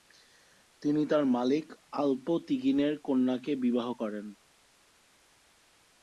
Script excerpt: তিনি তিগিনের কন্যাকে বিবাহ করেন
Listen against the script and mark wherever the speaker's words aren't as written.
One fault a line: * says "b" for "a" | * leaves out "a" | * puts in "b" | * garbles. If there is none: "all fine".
* puts in "তার মালিক আল্প"